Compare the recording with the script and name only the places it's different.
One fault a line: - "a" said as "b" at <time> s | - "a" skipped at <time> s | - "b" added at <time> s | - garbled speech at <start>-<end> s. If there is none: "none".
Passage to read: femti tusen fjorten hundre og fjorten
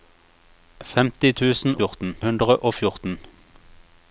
none